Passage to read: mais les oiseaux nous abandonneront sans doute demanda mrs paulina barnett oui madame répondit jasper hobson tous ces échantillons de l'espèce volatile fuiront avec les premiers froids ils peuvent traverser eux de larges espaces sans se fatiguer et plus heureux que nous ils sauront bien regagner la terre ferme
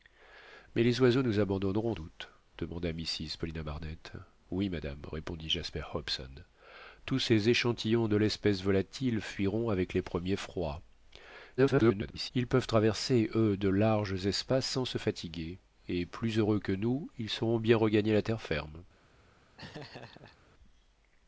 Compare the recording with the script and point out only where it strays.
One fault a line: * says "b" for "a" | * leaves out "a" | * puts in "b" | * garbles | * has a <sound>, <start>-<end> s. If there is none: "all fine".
* leaves out "sans"
* garbles
* has a laugh, 19.6-20.4 s